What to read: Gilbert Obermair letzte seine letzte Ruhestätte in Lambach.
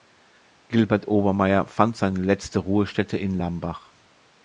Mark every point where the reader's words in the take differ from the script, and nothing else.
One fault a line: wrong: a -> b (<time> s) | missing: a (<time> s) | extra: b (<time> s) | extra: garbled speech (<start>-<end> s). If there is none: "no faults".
wrong: letzte -> fand (1.7 s)